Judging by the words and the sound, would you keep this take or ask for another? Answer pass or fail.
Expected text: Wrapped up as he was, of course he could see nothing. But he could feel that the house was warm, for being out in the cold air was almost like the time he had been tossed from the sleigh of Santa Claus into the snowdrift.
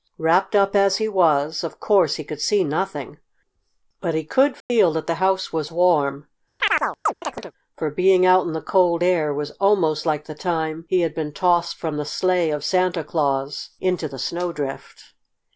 fail